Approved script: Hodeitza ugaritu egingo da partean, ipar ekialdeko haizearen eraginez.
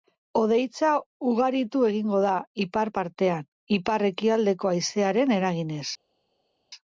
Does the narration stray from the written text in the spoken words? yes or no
yes